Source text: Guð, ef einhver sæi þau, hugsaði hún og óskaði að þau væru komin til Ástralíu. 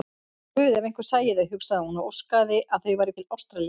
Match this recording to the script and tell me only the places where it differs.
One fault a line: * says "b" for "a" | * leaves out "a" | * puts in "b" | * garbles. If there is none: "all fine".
* leaves out "komin"